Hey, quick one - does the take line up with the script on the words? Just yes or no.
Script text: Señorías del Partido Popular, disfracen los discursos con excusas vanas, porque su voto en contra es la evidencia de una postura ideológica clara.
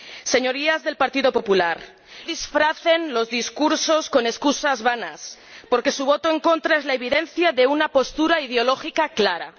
yes